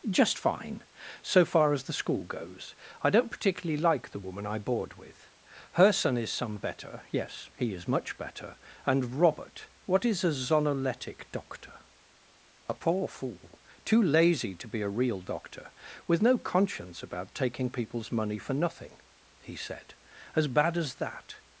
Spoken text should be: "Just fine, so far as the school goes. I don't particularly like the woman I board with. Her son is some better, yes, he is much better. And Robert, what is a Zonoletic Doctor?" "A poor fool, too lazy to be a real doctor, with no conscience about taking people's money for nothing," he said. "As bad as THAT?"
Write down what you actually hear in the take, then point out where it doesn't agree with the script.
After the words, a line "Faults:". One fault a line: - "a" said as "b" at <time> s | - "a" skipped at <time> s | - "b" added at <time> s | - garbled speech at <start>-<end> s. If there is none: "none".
"Just fine, so far as the school goes. I don't particularly like the woman I board with. Her son is some better, yes, he is much better. And Robert, what is a Zonoletic Doctor?" "A poor fool, too lazy to be a real doctor, with no conscience about taking people's money for nothing," he said. "As bad as THAT?"
Faults:
none